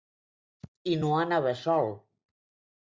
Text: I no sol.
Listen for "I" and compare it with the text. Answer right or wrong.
right